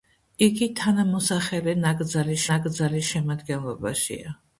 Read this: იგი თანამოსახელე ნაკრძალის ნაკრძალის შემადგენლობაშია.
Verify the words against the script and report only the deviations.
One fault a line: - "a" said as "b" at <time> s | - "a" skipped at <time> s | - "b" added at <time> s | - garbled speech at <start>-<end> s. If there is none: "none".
none